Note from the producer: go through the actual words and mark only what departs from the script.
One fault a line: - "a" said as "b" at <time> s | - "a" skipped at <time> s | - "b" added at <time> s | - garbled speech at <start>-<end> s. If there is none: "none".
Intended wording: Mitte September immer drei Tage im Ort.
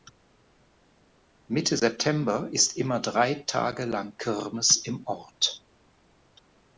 - "ist" added at 2.5 s
- "lang Kirmes" added at 3.8 s